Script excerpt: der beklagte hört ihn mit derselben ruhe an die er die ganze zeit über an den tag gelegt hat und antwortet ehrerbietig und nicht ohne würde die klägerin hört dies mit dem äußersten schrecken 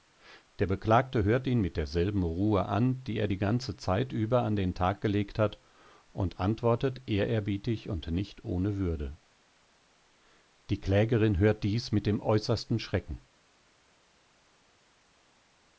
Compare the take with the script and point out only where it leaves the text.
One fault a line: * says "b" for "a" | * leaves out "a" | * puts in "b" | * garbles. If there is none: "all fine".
all fine